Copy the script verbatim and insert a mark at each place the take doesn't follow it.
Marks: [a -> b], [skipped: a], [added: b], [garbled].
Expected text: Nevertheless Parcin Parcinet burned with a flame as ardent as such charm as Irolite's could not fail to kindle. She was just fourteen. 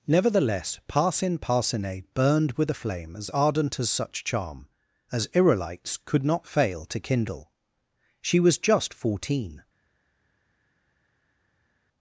Nevertheless Parcin Parcinet burned with a flame as ardent as such charm as Irolite's could not fail to kindle. She was just fourteen.